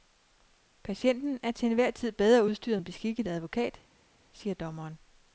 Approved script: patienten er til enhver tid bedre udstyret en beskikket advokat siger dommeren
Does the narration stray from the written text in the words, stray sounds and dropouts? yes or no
no